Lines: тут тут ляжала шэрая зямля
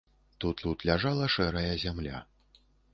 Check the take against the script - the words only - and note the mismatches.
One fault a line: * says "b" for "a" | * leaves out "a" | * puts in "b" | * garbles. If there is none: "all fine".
all fine